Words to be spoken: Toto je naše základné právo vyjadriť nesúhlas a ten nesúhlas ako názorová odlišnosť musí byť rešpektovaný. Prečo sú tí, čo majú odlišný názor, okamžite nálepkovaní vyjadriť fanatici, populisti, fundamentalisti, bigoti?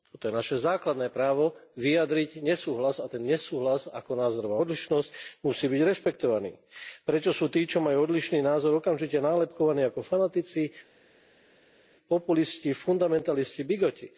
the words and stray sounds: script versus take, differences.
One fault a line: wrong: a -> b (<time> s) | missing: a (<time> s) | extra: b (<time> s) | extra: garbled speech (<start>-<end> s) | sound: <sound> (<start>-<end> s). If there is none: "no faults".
wrong: vyjadriť -> ako (9.8 s)